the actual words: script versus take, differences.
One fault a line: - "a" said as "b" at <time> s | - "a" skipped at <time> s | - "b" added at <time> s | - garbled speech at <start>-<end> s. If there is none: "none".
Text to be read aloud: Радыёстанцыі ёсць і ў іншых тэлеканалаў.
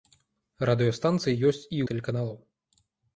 - "ў іншых" skipped at 1.8 s